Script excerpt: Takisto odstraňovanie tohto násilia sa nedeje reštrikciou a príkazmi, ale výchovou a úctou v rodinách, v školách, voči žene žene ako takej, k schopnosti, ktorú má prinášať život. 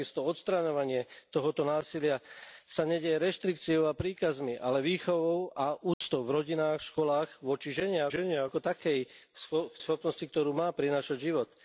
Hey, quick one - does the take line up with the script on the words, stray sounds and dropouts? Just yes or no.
no